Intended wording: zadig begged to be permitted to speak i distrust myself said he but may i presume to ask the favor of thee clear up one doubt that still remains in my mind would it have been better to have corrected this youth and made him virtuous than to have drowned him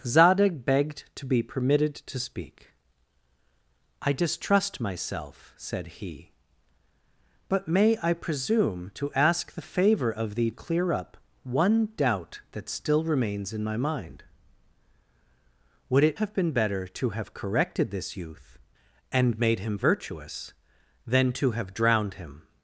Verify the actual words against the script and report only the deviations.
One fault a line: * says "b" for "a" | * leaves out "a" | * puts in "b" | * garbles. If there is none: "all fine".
all fine